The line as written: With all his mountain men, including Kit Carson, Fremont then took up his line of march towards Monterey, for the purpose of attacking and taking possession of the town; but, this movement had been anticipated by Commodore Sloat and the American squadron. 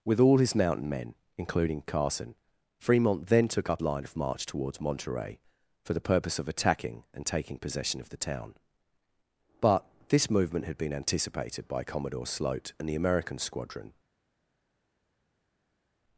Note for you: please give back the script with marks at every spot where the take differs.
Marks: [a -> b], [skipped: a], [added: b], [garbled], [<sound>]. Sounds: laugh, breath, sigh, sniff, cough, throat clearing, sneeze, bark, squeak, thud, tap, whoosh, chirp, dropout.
With all his mountain men, including [skipped: Kit] Carson, Fremont then took up [skipped: his] line of march towards Monterey, for the purpose of attacking and taking possession of the town; but, this movement had been anticipated by Commodore Sloat and the American squadron.